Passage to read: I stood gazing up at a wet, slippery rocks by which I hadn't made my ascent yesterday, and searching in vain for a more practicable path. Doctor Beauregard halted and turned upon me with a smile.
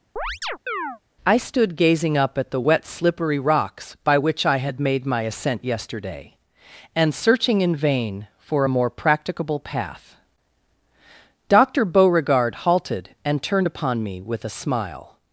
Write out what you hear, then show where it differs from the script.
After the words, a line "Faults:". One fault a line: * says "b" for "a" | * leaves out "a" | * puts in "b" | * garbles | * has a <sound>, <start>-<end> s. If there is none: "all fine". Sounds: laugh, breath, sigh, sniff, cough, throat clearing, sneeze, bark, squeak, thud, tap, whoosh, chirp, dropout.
I stood gazing up at the wet, slippery rocks by which I had made my ascent yesterday, and searching in vain for a more practicable path. Doctor Beauregard halted and turned upon me with a smile.
Faults:
* has a chirp, 0.2-1.0 s
* says "the" for "a"
* says "had" for "hadn't"